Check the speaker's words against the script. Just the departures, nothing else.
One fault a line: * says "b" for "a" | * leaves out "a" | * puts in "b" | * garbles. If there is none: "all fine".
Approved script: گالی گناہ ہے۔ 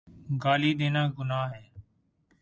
* puts in "دینا"